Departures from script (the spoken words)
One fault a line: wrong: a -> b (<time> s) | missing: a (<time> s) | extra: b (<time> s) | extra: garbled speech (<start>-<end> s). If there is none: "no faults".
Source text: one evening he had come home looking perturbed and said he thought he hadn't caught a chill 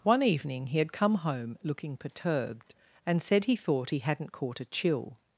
no faults